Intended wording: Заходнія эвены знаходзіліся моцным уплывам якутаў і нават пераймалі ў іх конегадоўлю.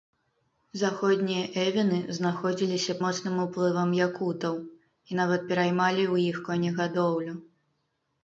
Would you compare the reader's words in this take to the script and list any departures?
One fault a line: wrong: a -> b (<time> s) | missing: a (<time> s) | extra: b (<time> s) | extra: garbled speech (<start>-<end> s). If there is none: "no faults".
no faults